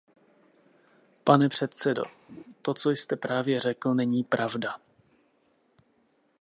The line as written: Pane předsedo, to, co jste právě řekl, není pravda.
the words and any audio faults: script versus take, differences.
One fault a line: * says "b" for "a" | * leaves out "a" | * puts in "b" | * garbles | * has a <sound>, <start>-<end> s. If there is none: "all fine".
* has a laugh, 2.3-2.4 s